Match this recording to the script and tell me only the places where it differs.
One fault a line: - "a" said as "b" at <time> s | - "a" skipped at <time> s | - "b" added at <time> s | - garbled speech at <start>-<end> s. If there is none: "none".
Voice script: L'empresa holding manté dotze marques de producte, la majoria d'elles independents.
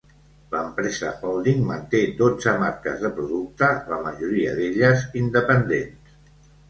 none